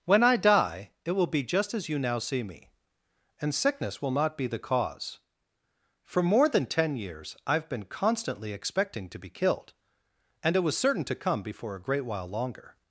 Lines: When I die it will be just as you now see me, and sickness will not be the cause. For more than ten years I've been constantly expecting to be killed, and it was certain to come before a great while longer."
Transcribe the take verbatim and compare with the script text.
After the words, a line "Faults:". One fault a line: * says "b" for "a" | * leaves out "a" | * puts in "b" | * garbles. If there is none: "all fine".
When I die it will be just as you now see me, and sickness will not be the cause. For more than ten years I've been constantly expecting to be killed, and it was certain to come before a great while longer."
Faults:
all fine